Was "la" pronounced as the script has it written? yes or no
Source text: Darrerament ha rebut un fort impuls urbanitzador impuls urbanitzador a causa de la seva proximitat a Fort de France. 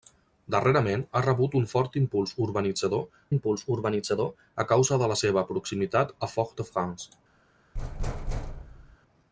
yes